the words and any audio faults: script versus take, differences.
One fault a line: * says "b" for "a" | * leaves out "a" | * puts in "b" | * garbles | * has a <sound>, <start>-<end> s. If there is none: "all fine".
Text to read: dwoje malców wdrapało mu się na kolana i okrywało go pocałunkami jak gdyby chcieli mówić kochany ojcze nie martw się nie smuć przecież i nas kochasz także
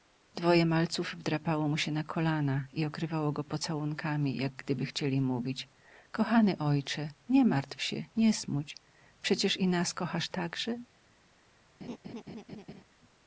* has a laugh, 11.8-12.8 s